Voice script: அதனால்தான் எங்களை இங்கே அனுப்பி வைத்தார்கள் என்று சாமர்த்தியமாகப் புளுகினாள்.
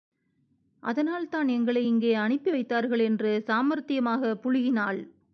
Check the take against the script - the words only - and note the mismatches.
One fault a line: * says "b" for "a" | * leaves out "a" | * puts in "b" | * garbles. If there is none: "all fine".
all fine